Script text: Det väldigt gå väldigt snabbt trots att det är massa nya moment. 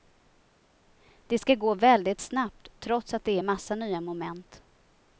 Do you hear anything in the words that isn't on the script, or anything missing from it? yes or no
yes